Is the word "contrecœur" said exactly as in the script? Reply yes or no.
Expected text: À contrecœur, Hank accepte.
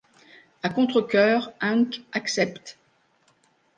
yes